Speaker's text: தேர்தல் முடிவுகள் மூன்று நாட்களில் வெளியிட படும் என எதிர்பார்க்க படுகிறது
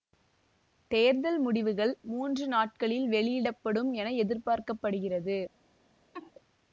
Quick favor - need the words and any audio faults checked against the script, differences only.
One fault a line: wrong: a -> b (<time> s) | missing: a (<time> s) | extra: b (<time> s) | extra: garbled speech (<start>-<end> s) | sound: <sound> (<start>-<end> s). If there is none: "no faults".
sound: laugh (6.1-6.3 s)